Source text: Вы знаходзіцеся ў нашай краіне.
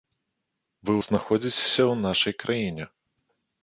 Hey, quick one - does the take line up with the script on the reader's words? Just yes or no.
yes